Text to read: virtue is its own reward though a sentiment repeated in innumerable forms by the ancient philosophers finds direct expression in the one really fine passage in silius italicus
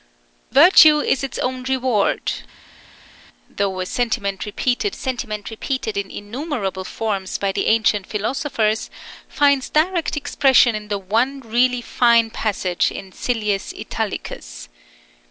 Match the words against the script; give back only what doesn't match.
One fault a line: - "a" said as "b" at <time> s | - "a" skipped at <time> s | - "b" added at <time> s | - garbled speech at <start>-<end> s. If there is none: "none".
- "sentiment repeated" added at 4.9 s